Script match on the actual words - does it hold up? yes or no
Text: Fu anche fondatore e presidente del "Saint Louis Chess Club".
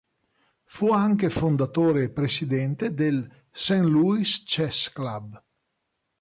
yes